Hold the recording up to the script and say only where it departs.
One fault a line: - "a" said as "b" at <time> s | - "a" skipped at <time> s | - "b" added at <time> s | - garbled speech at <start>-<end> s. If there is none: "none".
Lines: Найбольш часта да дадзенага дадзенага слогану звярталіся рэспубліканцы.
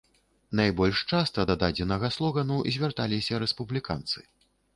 - "дадзенага" skipped at 2.1 s